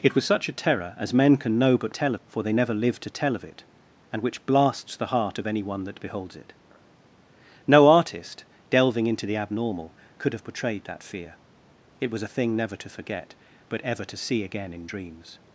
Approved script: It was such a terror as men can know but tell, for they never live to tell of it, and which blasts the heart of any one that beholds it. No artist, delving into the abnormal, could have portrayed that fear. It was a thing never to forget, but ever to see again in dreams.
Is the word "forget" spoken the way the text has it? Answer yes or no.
yes